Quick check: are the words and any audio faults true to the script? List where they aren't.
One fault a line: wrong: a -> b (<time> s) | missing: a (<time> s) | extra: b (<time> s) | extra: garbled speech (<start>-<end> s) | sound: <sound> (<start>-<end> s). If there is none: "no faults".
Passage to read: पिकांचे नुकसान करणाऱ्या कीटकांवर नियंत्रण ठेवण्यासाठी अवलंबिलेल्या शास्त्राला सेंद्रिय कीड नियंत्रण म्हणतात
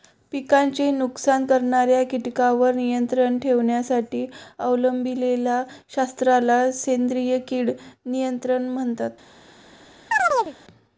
sound: chirp (10.1-10.6 s)